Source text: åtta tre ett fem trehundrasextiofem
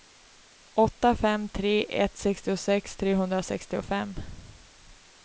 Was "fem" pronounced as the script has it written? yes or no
no